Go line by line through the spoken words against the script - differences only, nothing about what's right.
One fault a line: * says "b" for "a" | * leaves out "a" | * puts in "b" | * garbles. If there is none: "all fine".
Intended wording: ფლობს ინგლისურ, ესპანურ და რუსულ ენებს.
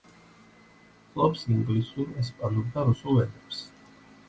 all fine